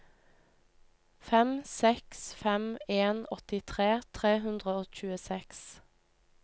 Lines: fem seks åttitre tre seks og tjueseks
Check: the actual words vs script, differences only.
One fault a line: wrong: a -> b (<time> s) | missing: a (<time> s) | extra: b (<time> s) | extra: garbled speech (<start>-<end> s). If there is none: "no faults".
extra: fem en (2.4 s)
wrong: seks -> hundre (4.5 s)